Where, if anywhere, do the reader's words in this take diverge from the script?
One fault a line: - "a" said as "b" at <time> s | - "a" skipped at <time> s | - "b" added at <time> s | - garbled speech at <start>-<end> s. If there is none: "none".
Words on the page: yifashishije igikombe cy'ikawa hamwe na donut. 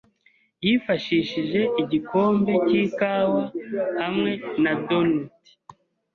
none